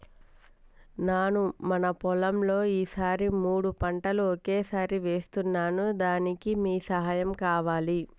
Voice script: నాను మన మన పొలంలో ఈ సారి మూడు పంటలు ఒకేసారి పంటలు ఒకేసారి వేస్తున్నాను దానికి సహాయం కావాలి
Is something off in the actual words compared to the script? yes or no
yes